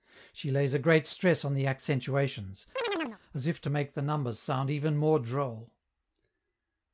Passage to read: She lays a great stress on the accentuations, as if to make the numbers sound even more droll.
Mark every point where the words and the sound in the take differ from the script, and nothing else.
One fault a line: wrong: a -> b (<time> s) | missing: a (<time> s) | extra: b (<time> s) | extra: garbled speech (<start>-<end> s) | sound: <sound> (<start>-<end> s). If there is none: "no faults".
sound: chirp (2.8-3.2 s)